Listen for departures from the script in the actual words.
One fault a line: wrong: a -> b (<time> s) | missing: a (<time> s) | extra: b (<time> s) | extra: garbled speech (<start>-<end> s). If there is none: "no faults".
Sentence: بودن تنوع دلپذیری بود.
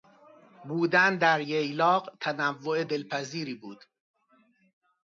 extra: در ییلاق (1.2 s)